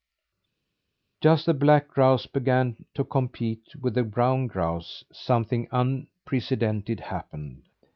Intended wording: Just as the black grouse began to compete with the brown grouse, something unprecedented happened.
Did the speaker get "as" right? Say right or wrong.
wrong